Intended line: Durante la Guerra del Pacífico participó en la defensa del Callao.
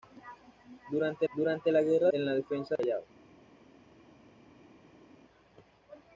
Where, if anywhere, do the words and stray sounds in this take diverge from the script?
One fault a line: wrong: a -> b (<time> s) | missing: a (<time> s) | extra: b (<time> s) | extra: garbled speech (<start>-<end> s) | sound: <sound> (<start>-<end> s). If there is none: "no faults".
extra: durante (1.3 s)
missing: del Pacífico participó (2.1 s)